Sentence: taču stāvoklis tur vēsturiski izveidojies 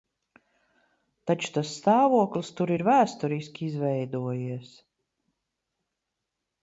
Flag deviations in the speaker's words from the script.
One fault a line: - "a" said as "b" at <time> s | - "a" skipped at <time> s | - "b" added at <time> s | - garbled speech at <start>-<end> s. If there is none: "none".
- "tas" added at 1.6 s
- "ir" added at 2.8 s